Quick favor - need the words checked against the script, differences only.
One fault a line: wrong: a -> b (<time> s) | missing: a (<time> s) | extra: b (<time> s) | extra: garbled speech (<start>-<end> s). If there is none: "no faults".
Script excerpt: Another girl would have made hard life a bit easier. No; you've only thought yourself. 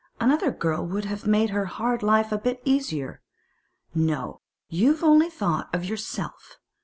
extra: her (1.5 s)
extra: of (5.7 s)